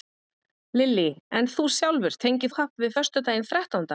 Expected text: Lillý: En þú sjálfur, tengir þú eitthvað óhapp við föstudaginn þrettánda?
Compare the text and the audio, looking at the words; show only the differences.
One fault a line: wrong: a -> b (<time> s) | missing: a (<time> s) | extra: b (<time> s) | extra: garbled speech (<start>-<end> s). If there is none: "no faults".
missing: þú eitthvað (2.5 s)